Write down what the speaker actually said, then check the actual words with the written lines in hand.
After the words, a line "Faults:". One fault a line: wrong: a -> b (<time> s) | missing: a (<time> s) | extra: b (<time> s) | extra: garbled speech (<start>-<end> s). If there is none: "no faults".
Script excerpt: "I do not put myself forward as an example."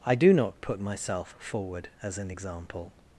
"I do not put myself forward as an example."
Faults:
no faults